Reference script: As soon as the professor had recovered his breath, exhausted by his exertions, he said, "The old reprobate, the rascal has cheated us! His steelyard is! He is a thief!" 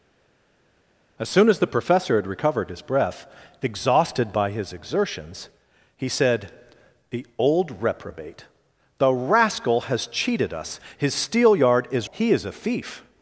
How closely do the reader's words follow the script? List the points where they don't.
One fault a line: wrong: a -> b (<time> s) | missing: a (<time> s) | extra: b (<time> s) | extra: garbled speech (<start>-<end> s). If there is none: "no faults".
no faults